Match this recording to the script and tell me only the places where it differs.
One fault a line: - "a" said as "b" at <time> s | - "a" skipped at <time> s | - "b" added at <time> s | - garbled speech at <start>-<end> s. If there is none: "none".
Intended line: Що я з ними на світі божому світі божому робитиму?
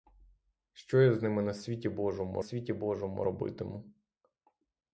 none